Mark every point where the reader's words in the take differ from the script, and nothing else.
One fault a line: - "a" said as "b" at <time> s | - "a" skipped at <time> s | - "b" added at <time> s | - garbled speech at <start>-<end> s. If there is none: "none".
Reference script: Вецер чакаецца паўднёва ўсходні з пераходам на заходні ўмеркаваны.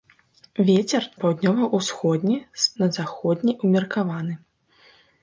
- "чакаецца" skipped at 1.0 s
- "пераходам" skipped at 2.7 s